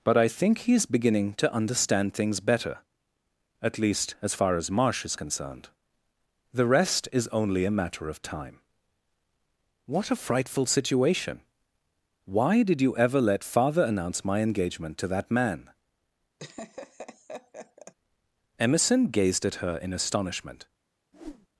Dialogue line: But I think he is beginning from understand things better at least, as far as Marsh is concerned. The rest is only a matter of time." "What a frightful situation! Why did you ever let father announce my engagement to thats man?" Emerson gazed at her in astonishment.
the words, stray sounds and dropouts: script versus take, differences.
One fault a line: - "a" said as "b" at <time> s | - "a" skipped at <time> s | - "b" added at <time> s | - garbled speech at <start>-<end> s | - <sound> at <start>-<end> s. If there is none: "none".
- "from" said as "to" at 1.4 s
- "thats" said as "that" at 15.1 s
- laugh at 16.4-17.9 s
- whoosh at 21.1-21.5 s